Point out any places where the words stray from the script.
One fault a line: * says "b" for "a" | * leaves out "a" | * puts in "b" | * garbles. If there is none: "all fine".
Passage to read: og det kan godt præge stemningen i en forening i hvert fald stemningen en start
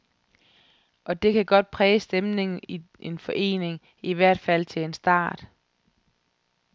* says "til" for "stemningen"